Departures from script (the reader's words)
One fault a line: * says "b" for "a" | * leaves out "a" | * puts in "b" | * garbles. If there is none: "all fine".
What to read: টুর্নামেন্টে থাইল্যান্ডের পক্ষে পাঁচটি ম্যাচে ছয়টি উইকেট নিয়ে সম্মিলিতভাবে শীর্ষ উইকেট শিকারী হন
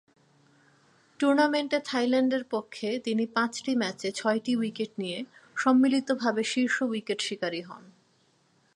* puts in "তিনি"